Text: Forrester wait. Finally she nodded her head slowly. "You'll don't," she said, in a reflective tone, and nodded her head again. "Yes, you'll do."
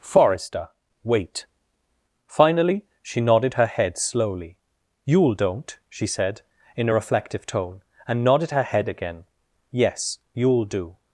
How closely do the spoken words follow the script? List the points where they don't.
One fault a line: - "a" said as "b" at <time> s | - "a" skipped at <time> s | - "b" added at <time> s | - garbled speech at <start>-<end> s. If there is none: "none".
none